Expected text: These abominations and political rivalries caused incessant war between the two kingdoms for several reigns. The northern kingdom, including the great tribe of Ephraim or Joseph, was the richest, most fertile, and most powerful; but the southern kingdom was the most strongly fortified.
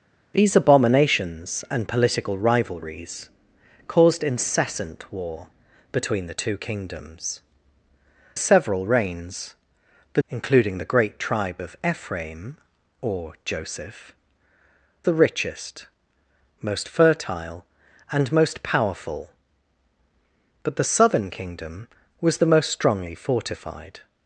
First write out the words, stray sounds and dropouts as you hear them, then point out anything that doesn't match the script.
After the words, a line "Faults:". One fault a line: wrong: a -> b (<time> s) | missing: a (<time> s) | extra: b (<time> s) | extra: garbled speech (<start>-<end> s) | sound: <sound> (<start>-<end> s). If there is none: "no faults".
These abominations and political rivalries caused incessant war between the two kingdoms several reigns. The including the great tribe of Ephraim or Joseph, the richest, most fertile, and most powerful; but the southern kingdom was the most strongly fortified.
Faults:
missing: for (7.4 s)
missing: northern kingdom (10.2 s)
missing: was (14.1 s)